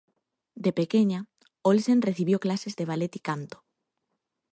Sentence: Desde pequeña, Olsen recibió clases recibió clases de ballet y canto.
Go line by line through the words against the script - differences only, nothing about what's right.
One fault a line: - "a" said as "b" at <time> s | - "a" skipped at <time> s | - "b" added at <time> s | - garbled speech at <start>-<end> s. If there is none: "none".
- "Desde" said as "De" at 0.6 s
- "recibió clases" skipped at 2.8 s